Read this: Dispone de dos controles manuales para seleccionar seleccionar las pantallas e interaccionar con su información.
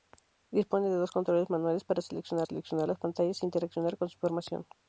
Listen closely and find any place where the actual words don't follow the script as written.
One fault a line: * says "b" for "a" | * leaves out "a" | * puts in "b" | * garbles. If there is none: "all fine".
all fine